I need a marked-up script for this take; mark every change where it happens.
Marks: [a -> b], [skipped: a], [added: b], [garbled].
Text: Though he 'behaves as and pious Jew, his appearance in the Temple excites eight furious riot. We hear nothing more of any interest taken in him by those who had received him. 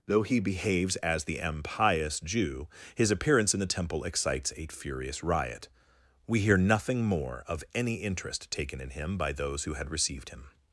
Though he 'behaves as [and pious -> the impious] Jew, his appearance in the Temple excites [eight -> a] furious riot. We hear nothing more of any interest taken in him by those who had received him.